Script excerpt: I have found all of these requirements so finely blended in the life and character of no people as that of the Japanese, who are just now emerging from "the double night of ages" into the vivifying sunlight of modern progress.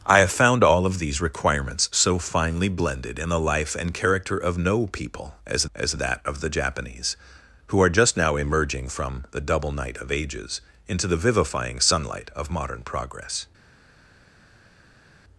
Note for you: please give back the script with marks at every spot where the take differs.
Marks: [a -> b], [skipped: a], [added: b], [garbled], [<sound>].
I have found all of these requirements so finely blended in the life and character of no people as [added: as] that of the Japanese, who are just now emerging from "the double night of ages" into the vivifying sunlight of modern progress.